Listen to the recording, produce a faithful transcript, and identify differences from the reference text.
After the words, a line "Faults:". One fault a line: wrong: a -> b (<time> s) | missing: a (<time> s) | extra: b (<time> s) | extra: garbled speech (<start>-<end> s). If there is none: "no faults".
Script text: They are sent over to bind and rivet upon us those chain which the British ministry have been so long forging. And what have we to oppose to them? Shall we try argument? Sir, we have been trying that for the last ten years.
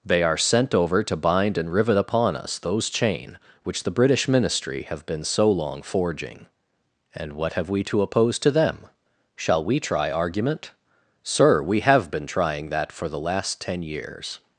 They are sent over to bind and rivet upon us those chain which the British ministry have been so long forging. And what have we to oppose to them? Shall we try argument? Sir, we have been trying that for the last ten years.
Faults:
no faults